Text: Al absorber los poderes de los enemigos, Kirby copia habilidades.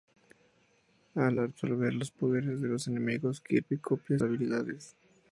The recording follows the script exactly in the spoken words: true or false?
true